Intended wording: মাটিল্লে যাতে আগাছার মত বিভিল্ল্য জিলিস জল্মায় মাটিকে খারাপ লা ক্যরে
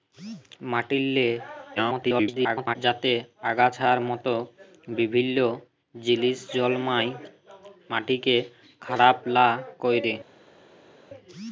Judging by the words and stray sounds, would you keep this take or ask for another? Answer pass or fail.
fail